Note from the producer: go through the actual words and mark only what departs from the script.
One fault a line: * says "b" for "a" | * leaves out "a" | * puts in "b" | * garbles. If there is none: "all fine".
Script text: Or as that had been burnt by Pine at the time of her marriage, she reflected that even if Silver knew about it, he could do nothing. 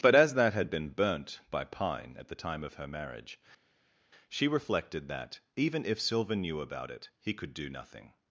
* says "But" for "Or"